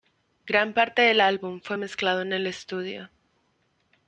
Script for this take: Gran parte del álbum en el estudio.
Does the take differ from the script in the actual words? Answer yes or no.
yes